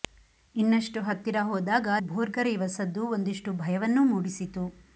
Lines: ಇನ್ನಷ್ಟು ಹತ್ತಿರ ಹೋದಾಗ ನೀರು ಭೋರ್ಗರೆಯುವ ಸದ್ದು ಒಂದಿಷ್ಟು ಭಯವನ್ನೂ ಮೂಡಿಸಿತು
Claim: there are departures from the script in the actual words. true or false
true